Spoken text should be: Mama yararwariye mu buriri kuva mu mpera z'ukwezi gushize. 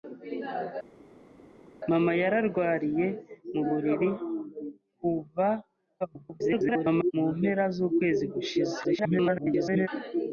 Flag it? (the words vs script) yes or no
yes